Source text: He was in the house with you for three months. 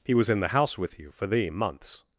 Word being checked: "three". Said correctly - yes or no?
no